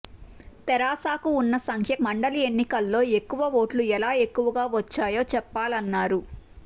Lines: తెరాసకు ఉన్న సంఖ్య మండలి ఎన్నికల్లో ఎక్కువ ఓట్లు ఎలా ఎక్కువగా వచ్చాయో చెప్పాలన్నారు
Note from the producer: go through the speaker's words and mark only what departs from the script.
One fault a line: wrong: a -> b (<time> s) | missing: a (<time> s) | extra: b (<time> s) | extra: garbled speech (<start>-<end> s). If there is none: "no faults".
no faults